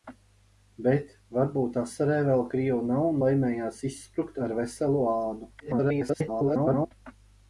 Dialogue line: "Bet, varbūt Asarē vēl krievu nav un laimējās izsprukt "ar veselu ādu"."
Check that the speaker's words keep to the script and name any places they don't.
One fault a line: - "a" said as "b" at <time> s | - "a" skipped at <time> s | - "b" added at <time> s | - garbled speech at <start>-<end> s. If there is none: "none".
- garbled speech at 5.6-6.9 s